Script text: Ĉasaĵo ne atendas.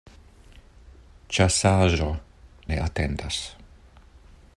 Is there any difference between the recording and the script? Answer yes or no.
no